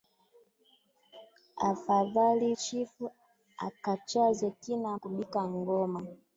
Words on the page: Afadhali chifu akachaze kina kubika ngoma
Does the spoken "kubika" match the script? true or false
true